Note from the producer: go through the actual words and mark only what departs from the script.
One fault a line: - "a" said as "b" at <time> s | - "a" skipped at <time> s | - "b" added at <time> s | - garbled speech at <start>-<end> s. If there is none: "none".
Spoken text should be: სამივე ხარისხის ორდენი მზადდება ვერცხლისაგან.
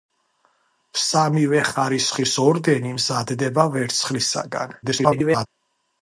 - garbled speech at 4.8-5.5 s